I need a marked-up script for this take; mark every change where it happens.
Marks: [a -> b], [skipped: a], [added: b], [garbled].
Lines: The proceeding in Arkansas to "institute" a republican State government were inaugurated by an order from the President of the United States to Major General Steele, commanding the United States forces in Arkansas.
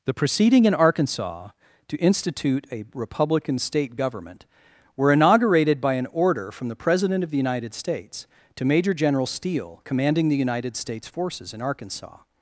The proceeding in Arkansas to "institute" a republican State government were inaugurated by an order from the President of the United States to Major General Steele, commanding the United States forces in Arkansas.